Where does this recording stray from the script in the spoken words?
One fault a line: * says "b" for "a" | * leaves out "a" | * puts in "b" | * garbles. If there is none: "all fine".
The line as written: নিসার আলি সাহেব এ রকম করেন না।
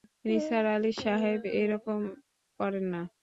all fine